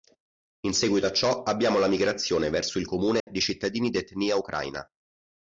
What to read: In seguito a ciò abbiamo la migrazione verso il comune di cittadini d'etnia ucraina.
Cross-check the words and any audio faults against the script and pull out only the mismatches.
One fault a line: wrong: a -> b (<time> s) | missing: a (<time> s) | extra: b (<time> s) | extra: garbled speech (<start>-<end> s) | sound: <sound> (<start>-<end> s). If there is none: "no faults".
sound: dropout (3.2-3.3 s)